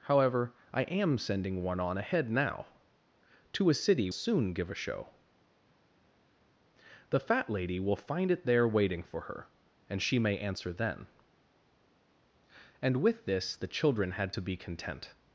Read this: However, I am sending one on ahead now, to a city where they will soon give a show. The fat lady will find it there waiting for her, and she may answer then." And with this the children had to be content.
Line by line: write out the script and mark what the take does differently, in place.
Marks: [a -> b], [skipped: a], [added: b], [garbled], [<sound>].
However, I am sending one on ahead now, to a city [skipped: where they will] soon give a show. The fat lady will find it there waiting for her, and she may answer then." And with this the children had to be content.